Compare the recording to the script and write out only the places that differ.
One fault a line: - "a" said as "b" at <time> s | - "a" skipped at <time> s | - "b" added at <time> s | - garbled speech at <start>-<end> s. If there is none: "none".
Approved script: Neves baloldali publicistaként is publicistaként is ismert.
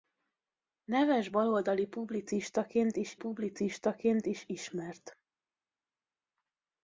none